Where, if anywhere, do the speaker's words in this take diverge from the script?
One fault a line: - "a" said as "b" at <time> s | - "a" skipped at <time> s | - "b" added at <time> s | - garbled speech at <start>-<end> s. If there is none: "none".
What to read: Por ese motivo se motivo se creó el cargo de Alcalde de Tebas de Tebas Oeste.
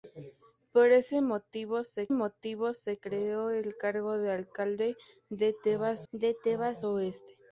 none